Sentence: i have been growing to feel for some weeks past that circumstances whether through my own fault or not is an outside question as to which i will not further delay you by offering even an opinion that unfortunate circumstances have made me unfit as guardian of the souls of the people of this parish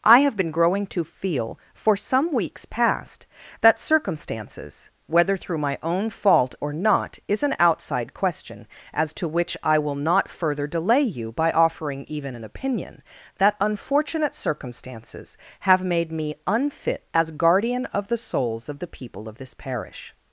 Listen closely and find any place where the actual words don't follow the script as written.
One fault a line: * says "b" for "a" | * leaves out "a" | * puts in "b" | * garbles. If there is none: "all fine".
all fine